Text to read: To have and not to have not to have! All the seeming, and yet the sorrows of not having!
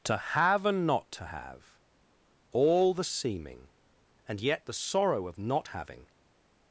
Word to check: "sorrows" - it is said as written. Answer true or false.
false